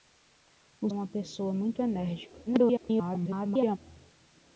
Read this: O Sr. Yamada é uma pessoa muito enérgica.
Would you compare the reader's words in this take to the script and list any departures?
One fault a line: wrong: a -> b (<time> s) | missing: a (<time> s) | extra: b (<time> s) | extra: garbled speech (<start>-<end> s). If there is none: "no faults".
missing: Sr Yamada (0.9 s)
extra: garbled speech (2.5-3.8 s)